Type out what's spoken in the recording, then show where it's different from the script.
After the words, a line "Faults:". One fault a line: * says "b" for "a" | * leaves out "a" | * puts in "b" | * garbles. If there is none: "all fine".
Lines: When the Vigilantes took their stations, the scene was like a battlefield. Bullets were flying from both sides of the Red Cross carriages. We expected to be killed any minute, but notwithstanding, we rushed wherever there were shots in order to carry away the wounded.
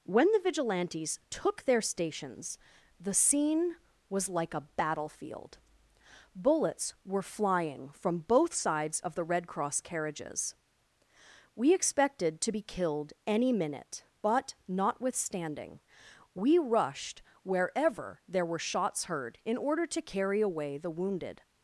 When the Vigilantes took their stations, the scene was like a battlefield. Bullets were flying from both sides of the Red Cross carriages. We expected to be killed any minute, but notwithstanding, we rushed wherever there were shots heard in order to carry away the wounded.
Faults:
* puts in "heard"